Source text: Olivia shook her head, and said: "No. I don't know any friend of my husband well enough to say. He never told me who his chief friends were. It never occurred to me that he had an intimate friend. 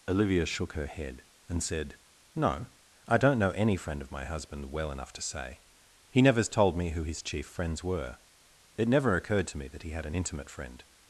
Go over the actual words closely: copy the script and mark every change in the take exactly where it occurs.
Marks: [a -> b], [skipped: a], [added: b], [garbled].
Olivia shook her head, and said: "No. I don't know any friend of my husband well enough to say. He [never -> nevers] told me who his chief friends were. It never occurred to me that he had an intimate friend.